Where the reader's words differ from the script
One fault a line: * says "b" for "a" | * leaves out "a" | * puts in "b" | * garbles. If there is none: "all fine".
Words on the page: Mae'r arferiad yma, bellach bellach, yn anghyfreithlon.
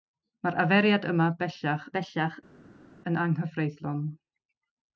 all fine